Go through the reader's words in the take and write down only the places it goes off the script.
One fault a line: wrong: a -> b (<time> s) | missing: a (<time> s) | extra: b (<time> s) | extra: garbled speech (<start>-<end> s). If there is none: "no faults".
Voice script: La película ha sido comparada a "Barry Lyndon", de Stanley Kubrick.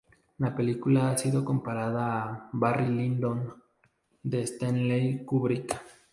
no faults